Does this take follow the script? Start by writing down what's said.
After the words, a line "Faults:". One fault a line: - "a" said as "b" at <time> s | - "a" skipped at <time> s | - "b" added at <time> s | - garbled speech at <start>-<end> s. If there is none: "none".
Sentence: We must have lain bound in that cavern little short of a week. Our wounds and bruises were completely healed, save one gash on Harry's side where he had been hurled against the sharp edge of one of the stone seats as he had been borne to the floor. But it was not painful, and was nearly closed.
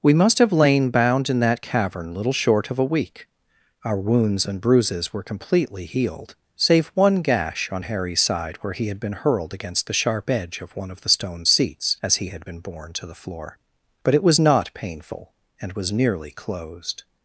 We must have lain bound in that cavern little short of a week. Our wounds and bruises were completely healed, save one gash on Harry's side where he had been hurled against the sharp edge of one of the stone seats as he had been borne to the floor. But it was not painful, and was nearly closed.
Faults:
none